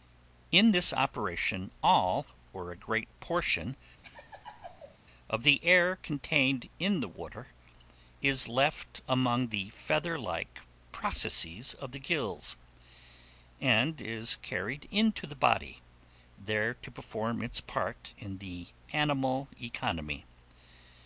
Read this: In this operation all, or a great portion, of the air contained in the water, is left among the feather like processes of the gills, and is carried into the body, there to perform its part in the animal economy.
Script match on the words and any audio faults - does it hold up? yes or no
no